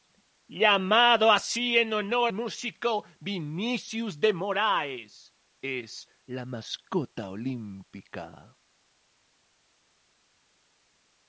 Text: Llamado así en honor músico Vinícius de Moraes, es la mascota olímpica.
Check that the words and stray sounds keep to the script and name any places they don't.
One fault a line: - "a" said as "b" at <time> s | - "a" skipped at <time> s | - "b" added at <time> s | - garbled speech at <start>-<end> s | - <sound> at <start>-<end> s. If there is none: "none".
none